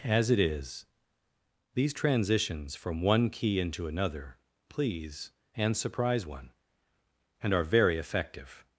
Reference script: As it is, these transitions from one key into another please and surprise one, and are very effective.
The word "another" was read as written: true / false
true